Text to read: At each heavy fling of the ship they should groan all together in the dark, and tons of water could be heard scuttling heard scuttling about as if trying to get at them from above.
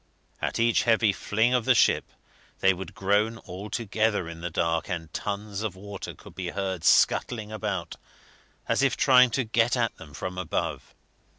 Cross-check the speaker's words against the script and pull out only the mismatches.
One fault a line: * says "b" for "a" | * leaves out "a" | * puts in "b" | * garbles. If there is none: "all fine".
* says "would" for "should"
* leaves out "heard scuttling"